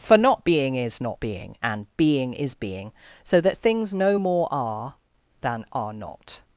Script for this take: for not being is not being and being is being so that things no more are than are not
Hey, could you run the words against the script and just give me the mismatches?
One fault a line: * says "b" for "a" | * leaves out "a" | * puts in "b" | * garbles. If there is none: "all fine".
all fine